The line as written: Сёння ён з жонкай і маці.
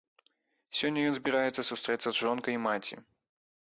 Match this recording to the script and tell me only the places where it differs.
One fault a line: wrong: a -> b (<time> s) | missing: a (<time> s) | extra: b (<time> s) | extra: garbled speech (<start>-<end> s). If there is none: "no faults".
extra: збіраецца сустрэцца (1.2 s)